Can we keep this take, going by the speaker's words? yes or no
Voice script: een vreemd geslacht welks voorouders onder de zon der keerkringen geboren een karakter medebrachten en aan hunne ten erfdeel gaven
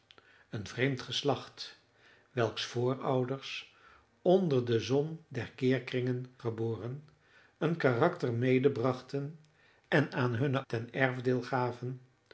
yes